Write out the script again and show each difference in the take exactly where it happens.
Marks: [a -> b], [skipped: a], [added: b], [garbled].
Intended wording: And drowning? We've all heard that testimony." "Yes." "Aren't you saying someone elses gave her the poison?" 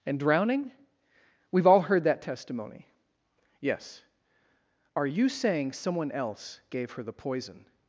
And drowning? We've all heard that testimony." "Yes." ["Aren't -> Are] you saying someone [elses -> else] gave her the poison?"